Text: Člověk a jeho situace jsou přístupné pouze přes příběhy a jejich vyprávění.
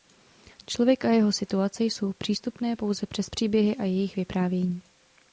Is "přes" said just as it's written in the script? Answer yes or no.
yes